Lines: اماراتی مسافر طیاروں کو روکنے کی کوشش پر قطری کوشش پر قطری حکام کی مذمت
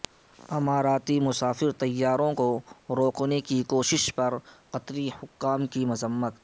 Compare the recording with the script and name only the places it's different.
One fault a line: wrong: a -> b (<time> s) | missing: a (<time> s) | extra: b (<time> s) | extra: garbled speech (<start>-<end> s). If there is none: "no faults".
missing: کوشش پر قطری (5.1 s)